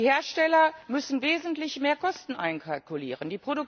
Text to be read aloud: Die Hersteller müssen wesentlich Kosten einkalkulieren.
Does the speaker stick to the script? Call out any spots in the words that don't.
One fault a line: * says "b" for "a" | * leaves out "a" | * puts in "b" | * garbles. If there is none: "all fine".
* puts in "mehr"